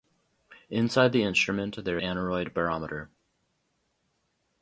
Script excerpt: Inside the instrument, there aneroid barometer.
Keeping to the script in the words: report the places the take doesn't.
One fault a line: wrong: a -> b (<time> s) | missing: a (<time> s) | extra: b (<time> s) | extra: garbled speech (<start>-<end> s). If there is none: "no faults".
no faults